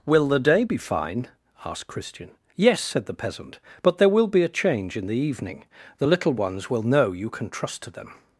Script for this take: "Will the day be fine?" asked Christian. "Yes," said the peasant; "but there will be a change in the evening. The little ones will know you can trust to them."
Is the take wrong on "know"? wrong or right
right